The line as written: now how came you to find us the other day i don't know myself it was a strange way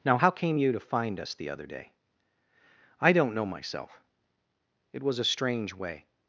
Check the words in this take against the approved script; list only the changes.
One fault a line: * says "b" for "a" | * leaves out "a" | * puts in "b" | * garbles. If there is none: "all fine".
all fine